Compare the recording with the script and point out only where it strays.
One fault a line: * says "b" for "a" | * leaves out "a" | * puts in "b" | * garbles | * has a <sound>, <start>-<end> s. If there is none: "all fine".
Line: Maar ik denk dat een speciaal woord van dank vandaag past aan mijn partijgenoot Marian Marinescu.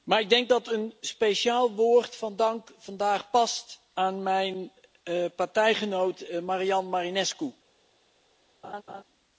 * has a laugh, 8.6-9.0 s